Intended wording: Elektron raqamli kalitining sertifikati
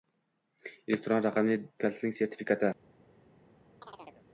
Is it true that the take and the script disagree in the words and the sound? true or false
true